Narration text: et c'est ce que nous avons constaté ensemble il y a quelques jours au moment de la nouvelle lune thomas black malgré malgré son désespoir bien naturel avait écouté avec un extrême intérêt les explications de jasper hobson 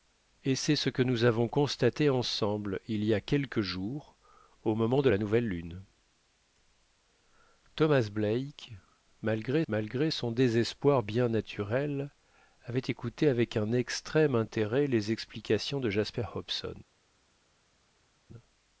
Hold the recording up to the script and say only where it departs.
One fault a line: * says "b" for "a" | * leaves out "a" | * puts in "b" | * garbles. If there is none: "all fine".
all fine